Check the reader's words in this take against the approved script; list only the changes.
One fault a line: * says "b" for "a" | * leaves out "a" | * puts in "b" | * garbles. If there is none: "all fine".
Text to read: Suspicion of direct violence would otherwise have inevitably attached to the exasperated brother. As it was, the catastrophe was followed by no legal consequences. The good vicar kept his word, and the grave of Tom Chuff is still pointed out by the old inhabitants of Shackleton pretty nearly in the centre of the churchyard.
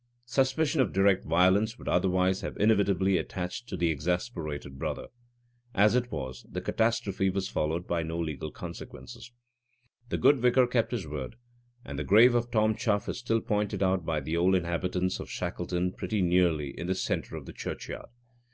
all fine